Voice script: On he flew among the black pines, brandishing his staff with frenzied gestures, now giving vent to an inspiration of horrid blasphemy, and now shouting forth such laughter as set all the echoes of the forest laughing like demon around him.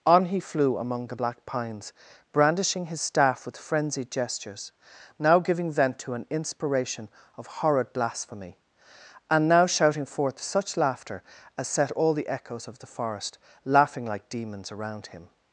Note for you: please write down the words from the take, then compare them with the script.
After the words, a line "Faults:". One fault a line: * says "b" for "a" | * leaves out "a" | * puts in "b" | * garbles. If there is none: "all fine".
On he flew among the black pines, brandishing his staff with frenzied gestures, now giving vent to an inspiration of horrid blasphemy, and now shouting forth such laughter as set all the echoes of the forest laughing like demons around him.
Faults:
* says "demons" for "demon"